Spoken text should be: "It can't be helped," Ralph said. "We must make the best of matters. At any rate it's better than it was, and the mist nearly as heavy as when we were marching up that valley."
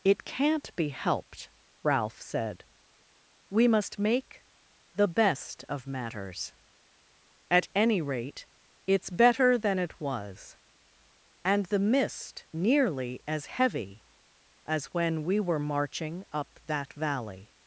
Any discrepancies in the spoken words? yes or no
no